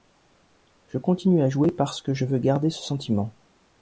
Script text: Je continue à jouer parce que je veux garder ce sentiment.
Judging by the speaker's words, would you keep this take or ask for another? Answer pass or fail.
pass